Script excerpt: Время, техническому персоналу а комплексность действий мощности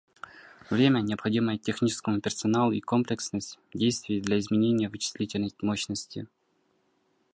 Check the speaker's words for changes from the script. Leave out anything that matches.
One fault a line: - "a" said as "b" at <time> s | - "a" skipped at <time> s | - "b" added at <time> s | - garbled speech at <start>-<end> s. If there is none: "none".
- "необходимое" added at 1.0 s
- "а" said as "и" at 2.7 s
- "для изменения вычислительной" added at 4.2 s